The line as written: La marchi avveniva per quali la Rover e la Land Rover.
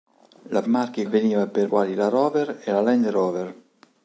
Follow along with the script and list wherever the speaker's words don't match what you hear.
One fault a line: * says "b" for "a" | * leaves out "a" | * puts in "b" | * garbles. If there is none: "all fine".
all fine